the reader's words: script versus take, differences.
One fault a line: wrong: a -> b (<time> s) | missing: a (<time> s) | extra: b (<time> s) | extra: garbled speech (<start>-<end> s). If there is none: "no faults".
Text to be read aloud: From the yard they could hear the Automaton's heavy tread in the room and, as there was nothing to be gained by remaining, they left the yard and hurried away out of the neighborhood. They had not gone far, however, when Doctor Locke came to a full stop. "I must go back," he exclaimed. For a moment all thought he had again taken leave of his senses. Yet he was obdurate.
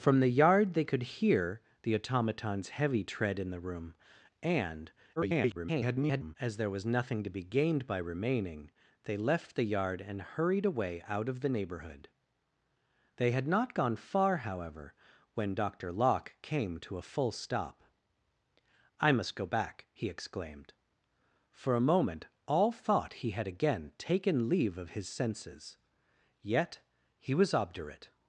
extra: garbled speech (5.2-6.4 s)